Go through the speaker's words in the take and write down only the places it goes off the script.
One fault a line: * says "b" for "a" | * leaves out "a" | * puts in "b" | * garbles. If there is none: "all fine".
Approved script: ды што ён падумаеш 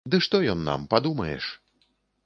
* puts in "нам"